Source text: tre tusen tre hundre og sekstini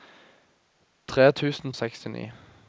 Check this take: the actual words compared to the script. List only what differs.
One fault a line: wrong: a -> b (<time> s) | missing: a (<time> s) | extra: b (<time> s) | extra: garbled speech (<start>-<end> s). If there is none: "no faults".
missing: tre hundre (1.7 s)